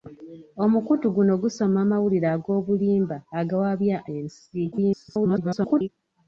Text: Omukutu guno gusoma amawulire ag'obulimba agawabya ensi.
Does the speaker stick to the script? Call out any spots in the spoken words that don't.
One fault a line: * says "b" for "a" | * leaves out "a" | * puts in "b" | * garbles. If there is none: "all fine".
* garbles